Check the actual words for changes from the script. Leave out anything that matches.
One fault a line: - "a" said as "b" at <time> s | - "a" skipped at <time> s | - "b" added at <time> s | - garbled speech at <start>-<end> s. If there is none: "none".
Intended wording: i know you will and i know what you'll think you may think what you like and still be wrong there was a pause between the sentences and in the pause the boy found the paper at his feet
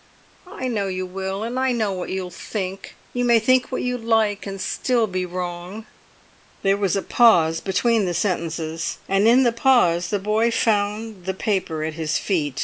none